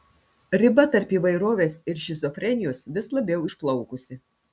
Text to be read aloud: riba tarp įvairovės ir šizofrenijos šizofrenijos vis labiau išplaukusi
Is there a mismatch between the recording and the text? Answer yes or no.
yes